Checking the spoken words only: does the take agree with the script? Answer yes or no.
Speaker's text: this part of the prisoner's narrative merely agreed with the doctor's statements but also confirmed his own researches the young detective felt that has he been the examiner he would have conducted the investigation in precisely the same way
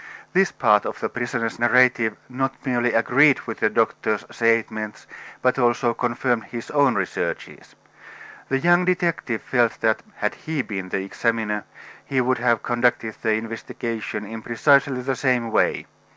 no